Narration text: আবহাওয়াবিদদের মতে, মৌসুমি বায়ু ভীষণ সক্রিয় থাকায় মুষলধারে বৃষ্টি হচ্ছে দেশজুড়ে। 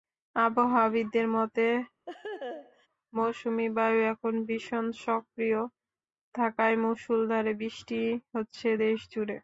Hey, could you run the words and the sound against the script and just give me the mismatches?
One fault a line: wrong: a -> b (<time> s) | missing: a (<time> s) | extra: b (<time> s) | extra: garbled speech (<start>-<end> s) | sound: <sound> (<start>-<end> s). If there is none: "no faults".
sound: laugh (2.1-2.9 s)
extra: এখন (4.1 s)